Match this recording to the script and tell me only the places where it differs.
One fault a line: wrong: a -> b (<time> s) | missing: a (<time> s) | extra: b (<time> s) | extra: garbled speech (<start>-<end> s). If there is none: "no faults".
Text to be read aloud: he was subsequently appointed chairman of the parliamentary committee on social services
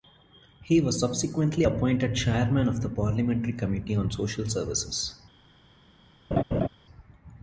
no faults